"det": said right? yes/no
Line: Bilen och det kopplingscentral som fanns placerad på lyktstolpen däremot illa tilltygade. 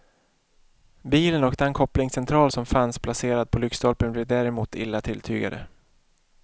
no